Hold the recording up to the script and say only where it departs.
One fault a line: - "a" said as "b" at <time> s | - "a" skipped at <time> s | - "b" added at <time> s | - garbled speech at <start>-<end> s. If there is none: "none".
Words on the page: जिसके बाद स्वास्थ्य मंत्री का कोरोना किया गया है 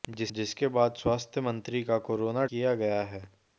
none